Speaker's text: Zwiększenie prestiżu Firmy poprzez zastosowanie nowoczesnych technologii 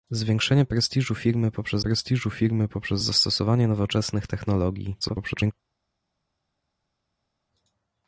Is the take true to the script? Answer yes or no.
no